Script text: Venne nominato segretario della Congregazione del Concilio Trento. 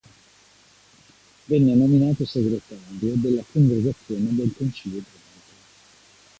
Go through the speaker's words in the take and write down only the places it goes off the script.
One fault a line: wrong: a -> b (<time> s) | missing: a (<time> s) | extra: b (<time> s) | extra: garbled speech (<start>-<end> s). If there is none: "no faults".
no faults